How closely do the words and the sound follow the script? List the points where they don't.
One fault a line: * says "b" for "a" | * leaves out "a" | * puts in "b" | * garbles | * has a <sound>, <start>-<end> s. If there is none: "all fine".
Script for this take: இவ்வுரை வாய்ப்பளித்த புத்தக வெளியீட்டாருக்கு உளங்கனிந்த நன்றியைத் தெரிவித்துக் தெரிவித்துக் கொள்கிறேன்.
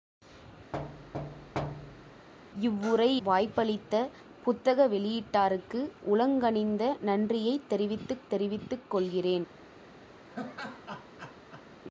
* has a thud, 0.7-2.3 s
* has a laugh, 10.3-11.7 s